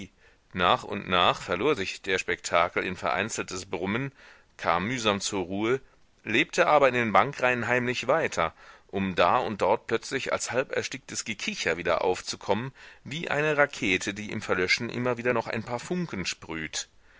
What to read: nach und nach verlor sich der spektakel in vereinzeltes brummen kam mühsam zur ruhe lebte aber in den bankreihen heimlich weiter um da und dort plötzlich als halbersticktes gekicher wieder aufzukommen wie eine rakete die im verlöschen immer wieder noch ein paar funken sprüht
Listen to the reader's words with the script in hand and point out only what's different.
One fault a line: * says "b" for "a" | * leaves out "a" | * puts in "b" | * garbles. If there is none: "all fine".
all fine